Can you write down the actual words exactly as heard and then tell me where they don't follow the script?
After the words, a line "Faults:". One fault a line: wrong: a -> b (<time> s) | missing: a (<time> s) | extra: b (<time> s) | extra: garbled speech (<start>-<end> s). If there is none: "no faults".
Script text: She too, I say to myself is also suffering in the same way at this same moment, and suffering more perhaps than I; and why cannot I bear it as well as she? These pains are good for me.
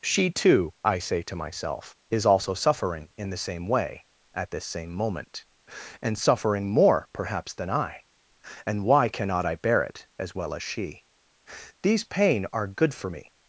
She too, I say to myself is also suffering in the same way at this same moment, and suffering more perhaps than I; and why cannot I bear it as well as she? These pain are good for me.
Faults:
wrong: pains -> pain (12.0 s)